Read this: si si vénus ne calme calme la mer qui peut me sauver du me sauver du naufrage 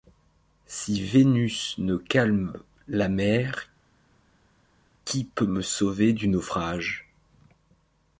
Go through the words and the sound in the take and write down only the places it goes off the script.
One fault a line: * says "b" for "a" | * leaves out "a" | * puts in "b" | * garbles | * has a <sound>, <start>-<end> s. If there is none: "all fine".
* leaves out "si"
* leaves out "calme"
* leaves out "me sauver du"